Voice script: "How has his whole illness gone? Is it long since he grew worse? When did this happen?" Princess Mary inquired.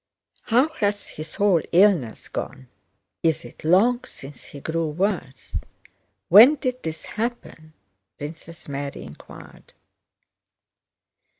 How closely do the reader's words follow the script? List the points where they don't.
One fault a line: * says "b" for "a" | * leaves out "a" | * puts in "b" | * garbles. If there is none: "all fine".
all fine